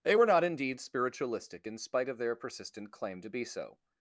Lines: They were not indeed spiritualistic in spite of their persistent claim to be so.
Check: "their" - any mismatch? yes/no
no